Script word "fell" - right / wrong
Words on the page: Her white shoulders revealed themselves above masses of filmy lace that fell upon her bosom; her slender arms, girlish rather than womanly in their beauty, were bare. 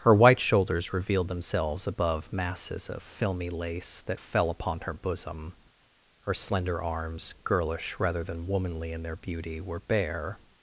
right